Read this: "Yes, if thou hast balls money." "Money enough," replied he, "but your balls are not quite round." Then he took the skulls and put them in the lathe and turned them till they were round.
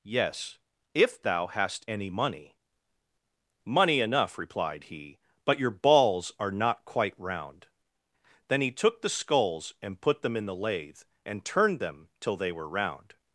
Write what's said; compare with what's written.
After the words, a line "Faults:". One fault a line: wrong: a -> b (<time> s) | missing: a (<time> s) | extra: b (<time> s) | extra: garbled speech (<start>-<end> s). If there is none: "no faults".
"Yes, if thou hast any money." "Money enough," replied he, "but your balls are not quite round." Then he took the skulls and put them in the lathe and turned them till they were round.
Faults:
wrong: balls -> any (1.9 s)